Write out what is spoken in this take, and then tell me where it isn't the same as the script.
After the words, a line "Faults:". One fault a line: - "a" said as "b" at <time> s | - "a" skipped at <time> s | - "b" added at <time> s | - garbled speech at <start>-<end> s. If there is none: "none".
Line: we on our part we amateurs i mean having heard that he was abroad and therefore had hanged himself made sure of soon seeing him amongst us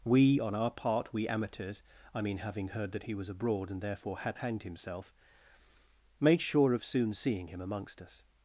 we on our part we amateurs i mean having heard that he was abroad and therefore had hanged himself made sure of soon seeing him amongst us
Faults:
none